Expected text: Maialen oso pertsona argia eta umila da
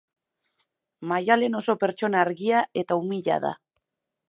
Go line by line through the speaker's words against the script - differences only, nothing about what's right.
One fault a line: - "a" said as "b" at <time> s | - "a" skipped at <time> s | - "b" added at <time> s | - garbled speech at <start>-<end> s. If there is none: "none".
none